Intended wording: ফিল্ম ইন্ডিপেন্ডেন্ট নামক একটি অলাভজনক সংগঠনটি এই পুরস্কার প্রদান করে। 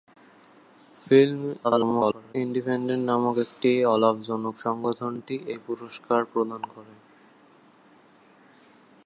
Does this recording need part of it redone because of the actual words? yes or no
yes